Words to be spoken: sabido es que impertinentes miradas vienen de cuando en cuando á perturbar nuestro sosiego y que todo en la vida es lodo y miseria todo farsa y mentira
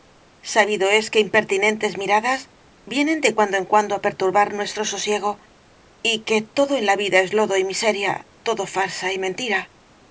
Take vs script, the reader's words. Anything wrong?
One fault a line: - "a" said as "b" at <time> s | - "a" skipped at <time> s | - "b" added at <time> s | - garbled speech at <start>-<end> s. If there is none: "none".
none